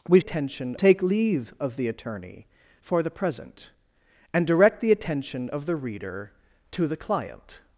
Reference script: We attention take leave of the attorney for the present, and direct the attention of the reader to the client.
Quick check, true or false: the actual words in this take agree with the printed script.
true